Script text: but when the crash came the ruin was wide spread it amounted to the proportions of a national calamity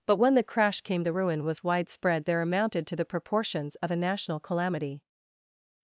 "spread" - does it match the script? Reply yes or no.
no